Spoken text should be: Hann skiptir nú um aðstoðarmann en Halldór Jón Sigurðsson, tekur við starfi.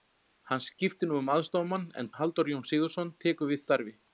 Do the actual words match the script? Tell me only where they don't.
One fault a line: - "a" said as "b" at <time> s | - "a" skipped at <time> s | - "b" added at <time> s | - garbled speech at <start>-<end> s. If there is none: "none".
none